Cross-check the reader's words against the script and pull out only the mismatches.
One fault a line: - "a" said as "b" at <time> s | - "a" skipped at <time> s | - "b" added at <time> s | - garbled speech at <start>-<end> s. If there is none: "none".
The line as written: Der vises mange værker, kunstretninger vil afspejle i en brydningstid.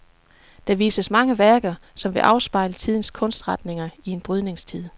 - "kunstretninger" said as "som" at 1.9 s
- "tidens kunstretninger" added at 2.7 s